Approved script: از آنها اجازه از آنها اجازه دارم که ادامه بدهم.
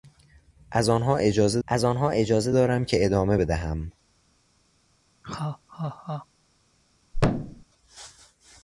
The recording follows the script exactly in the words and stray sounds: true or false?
false